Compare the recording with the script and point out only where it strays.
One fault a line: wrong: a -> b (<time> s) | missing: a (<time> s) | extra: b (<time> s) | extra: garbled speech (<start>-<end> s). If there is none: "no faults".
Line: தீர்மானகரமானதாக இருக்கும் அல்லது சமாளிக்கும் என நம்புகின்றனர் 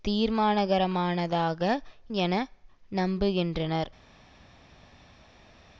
missing: இருக்கும் அல்லது சமாளிக்கும் (1.6 s)